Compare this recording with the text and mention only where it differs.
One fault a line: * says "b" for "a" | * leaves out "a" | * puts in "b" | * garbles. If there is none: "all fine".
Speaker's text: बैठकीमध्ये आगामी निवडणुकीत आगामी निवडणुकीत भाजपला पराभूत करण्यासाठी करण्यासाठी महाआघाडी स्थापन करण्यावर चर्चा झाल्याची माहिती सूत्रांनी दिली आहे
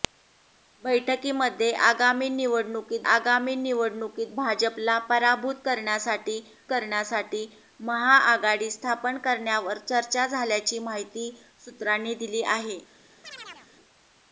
all fine